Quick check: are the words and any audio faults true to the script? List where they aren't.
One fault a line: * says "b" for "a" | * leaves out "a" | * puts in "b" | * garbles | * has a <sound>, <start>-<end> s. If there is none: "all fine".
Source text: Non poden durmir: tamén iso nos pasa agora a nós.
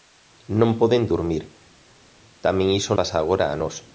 * leaves out "nos"